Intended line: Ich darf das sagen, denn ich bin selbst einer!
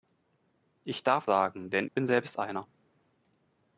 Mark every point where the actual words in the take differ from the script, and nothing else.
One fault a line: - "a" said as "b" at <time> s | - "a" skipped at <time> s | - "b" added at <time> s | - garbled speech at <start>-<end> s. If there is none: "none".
- "das" skipped at 1.3 s
- "ich" skipped at 1.9 s